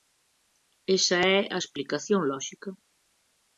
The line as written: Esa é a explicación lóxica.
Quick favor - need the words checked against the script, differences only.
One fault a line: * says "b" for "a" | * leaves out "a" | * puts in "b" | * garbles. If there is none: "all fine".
all fine